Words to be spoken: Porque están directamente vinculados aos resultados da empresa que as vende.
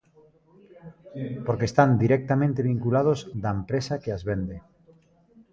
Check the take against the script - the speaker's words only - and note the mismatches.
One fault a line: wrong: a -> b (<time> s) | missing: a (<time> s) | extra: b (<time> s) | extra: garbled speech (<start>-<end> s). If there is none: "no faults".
missing: aos resultados (3.2 s)